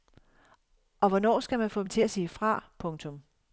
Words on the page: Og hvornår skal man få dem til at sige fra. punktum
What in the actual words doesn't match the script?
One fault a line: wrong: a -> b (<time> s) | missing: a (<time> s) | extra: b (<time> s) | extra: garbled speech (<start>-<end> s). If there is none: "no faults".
no faults